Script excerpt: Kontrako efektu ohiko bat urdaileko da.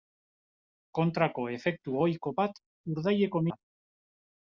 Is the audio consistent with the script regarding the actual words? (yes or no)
yes